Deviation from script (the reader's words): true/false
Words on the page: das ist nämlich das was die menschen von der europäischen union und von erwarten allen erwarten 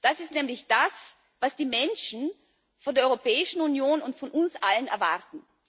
true